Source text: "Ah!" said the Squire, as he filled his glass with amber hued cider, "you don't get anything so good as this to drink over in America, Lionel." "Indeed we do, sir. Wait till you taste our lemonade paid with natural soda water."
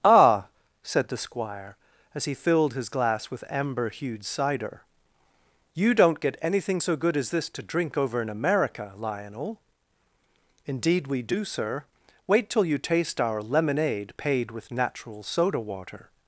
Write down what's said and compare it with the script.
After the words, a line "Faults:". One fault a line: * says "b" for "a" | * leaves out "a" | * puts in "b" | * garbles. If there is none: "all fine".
"Ah!" said the Squire, as he filled his glass with amber hued cider, "you don't get anything so good as this to drink over in America, Lionel." "Indeed we do, sir. Wait till you taste our lemonade paid with natural soda water."
Faults:
all fine